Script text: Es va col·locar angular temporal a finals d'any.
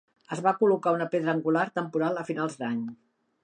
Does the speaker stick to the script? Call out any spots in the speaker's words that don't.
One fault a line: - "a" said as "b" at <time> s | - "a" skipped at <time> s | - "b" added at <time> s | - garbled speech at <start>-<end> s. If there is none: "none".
- "una pedra" added at 0.9 s